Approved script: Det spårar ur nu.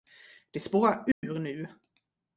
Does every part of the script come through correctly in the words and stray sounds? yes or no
no